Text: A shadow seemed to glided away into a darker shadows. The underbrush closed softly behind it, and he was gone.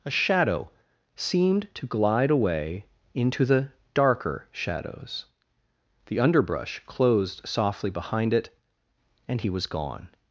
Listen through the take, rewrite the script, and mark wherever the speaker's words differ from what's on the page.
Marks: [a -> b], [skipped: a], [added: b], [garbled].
A shadow seemed to [glided -> glide] away into [a -> the] darker shadows. The underbrush closed softly behind it, and he was gone.